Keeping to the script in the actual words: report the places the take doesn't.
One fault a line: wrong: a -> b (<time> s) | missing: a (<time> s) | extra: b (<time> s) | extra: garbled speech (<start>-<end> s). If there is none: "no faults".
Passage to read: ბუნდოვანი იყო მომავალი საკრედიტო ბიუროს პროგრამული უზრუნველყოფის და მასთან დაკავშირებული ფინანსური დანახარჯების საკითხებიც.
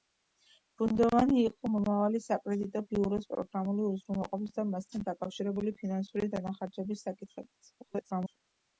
extra: garbled speech (7.8-8.4 s)